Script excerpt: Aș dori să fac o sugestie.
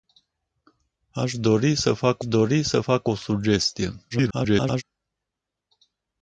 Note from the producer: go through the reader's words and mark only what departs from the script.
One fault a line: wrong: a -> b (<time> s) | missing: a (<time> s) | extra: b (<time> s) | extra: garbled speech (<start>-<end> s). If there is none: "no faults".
extra: dori să fac (2.2 s)
extra: garbled speech (4.1-4.8 s)